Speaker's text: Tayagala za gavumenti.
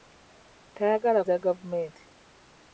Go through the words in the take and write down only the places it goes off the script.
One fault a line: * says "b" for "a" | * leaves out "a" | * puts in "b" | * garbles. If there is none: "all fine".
all fine